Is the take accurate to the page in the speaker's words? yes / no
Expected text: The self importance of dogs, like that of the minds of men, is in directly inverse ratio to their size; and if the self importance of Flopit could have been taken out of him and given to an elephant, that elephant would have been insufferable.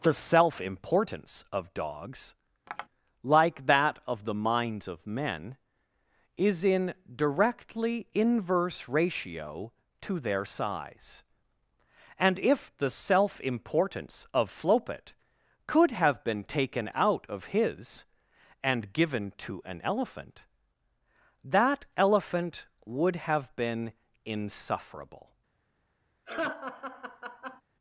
no